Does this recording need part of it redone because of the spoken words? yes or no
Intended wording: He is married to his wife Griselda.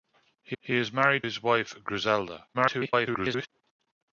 yes